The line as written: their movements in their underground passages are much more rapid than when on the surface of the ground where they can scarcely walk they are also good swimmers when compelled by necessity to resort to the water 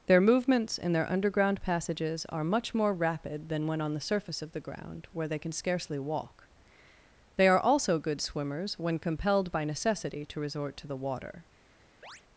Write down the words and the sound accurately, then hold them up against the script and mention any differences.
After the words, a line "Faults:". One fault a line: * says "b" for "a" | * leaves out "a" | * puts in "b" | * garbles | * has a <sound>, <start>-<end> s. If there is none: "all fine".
their movements in their underground passages are much more rapid than when on the surface of the ground where they can scarcely walk they are also good swimmers when compelled by necessity to resort to the water
Faults:
* has a chirp, 12.0-12.2 s